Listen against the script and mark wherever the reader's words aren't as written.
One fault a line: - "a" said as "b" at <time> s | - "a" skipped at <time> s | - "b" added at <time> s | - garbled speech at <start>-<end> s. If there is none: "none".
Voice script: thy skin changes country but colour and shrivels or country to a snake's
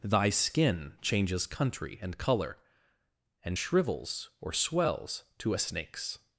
- "but" said as "and" at 2.0 s
- "country" said as "swells" at 4.5 s